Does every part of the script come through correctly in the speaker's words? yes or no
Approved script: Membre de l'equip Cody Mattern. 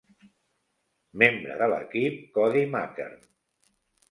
yes